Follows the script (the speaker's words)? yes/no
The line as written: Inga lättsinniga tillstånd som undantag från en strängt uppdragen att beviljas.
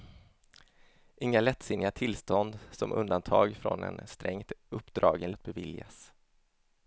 yes